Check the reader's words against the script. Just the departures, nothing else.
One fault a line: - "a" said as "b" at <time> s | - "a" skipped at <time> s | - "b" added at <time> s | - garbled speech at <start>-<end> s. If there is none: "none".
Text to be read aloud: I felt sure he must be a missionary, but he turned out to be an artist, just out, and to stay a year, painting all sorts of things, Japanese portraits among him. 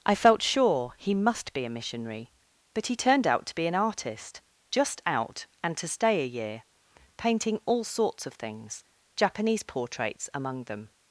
- "him" said as "them" at 10.6 s